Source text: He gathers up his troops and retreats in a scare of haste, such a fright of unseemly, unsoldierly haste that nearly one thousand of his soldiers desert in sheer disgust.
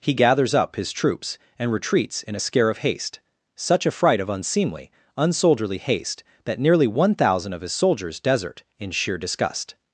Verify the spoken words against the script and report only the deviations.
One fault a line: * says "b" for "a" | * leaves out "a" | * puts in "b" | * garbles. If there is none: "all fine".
all fine